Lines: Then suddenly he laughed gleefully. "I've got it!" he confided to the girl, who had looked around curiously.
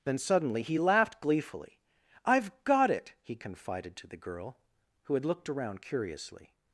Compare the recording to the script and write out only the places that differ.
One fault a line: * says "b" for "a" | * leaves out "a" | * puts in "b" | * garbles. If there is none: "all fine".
all fine